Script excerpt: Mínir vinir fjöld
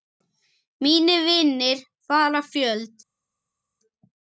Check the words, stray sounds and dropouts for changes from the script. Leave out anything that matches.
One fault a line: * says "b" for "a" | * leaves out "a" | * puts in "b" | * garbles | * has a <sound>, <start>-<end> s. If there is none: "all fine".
* puts in "fara"